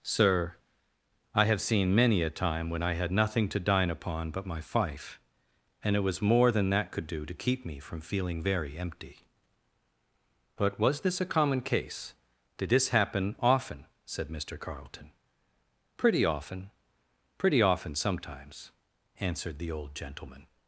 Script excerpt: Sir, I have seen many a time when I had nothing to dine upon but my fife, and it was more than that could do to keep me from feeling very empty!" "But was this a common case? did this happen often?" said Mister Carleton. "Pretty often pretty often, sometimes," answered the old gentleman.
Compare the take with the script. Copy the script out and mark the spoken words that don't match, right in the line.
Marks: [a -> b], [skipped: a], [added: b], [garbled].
Sir, I have seen many a time when I had nothing to dine upon but my fife, and it was more than that could do to keep me from feeling very empty!" "But was this a common case? did this happen often?" said Mister Carleton. "Pretty often pretty often, sometimes," answered the old gentleman.